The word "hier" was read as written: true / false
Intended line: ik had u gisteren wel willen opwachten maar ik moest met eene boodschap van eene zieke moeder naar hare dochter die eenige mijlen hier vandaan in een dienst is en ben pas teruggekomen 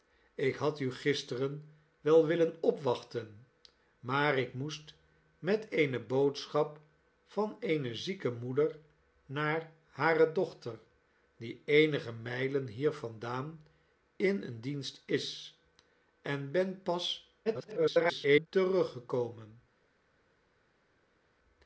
true